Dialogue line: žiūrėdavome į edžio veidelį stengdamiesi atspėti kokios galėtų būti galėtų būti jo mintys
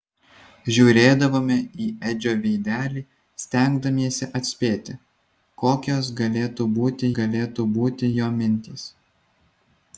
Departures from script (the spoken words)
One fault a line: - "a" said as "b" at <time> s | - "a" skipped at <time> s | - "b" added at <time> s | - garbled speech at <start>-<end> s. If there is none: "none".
none